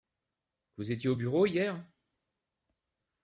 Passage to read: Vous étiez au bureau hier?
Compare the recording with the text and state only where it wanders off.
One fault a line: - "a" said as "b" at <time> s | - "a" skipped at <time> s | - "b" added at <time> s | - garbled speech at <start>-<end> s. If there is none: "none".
none